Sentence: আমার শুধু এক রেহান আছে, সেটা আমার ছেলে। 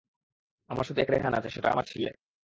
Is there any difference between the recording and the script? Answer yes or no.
no